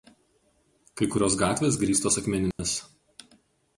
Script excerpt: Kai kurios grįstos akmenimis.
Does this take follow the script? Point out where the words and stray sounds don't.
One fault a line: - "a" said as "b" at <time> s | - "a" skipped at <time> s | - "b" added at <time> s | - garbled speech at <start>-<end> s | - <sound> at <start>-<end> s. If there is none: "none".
- "gatvės" added at 1.4 s
- dropout at 2.5-2.6 s